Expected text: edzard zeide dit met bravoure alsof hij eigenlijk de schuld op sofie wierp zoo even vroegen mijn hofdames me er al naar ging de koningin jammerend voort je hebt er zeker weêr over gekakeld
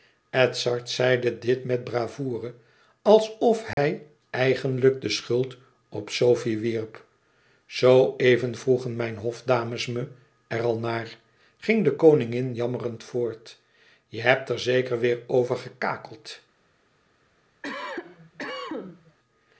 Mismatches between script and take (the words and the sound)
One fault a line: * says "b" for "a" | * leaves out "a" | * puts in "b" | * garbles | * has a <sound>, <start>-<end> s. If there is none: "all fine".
* has a dropout, 3.7-3.8 s
* has a cough, 17.6-19.2 s